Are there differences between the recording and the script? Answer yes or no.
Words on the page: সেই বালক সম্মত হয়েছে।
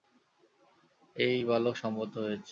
yes